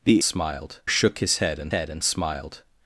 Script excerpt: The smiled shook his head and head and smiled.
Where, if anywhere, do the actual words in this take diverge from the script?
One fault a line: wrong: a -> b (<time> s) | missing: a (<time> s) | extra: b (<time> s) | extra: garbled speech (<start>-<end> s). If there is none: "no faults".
no faults